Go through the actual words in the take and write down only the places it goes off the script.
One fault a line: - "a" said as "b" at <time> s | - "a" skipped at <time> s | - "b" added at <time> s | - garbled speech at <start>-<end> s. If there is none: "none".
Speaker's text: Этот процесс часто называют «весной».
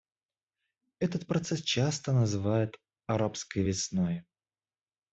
- "арабской" added at 3.1 s